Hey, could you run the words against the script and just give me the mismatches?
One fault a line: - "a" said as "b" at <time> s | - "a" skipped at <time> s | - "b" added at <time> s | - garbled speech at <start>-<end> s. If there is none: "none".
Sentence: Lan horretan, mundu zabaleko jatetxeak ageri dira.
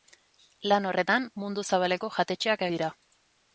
- "ageri" skipped at 2.6 s